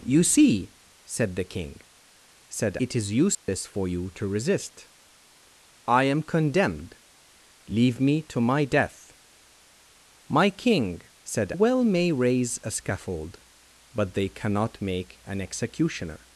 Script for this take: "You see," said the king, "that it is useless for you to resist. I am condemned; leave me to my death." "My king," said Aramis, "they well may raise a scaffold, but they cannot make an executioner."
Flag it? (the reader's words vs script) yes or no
yes